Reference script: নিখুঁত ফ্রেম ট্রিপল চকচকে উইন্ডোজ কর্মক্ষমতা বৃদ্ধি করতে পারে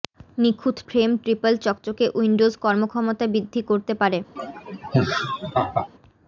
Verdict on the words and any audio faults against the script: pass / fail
fail